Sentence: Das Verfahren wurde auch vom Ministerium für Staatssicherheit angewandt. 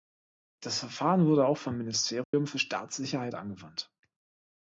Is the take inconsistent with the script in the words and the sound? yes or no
yes